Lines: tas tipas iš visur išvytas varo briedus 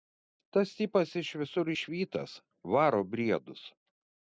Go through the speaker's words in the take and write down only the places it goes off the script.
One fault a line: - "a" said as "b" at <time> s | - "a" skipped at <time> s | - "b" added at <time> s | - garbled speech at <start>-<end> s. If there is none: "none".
none